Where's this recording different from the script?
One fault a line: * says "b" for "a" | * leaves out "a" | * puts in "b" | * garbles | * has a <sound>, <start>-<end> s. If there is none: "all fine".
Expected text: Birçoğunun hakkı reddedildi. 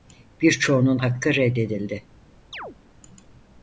* has a chirp, 2.5-2.8 s